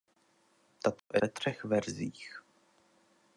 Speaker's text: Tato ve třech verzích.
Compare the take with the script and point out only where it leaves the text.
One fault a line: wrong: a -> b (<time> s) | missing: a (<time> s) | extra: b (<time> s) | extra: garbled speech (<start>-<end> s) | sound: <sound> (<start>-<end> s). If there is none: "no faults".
sound: dropout (1.0-1.1 s)